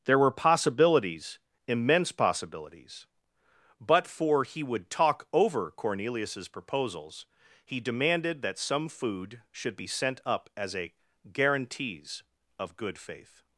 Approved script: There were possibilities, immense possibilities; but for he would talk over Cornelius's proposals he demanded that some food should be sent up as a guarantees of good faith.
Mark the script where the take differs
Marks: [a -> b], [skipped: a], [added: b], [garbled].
There were possibilities, immense possibilities; but for he would talk over Cornelius's proposals he demanded that some food should be sent up as a guarantees of good faith.